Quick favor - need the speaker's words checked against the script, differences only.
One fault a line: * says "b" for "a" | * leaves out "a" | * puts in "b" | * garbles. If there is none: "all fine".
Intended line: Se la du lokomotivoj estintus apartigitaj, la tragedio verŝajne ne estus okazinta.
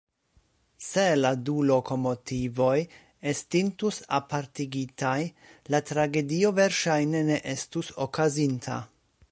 all fine